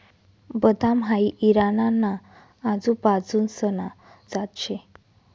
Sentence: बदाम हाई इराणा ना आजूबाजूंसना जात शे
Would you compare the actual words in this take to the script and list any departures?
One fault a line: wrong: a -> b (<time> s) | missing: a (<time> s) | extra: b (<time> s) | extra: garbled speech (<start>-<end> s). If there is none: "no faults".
no faults